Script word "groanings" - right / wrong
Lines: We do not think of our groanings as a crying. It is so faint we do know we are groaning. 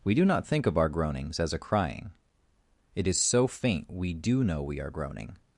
right